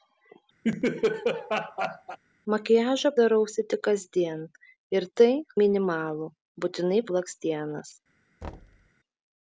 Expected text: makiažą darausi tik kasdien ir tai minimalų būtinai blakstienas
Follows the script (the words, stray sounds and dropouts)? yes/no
no